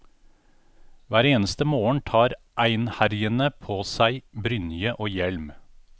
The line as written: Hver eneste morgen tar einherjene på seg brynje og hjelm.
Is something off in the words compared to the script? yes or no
no